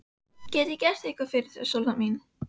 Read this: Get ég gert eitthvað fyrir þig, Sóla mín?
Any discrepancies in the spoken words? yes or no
no